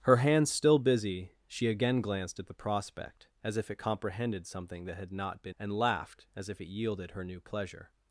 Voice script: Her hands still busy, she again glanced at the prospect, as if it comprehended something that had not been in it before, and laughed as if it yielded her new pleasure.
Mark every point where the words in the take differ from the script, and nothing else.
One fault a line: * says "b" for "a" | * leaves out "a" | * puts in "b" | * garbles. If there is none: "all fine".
* leaves out "in it before"